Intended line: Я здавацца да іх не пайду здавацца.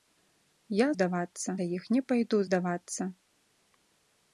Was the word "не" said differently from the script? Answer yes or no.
no